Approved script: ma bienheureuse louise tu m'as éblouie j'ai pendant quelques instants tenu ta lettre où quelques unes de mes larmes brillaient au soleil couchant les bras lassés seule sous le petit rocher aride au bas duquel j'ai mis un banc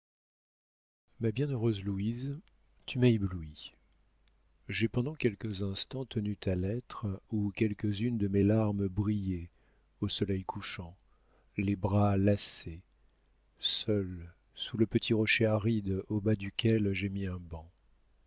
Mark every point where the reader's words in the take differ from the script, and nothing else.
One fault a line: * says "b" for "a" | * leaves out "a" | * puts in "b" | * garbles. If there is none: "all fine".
all fine